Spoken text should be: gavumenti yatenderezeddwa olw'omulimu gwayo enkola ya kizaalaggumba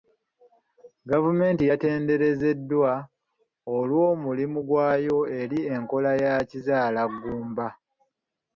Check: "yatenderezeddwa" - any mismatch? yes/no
no